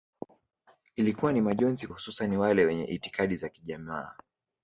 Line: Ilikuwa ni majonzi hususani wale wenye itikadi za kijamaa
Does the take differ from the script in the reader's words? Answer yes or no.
no